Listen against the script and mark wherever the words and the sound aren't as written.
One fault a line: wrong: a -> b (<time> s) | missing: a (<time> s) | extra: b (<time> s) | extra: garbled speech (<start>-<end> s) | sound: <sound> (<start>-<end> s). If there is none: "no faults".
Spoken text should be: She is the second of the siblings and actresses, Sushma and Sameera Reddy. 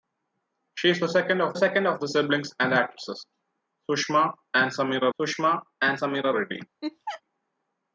extra: second of (1.5 s)
extra: Sushma and Sameera (5.2 s)
sound: laugh (6.8-7.2 s)